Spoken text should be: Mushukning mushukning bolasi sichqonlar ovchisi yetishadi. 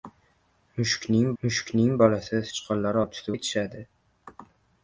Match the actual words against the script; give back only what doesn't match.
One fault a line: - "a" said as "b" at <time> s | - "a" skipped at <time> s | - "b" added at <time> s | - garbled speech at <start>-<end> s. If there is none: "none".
none